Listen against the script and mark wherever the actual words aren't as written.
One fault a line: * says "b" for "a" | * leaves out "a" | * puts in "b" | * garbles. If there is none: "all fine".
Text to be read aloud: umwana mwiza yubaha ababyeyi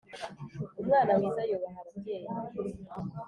all fine